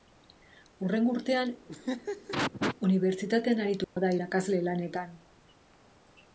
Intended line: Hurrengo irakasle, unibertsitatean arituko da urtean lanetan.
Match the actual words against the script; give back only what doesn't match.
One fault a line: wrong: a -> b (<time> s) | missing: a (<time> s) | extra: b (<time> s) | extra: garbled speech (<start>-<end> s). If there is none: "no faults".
wrong: irakasle -> urtean (1.2 s)
wrong: urtean -> irakasle (4.2 s)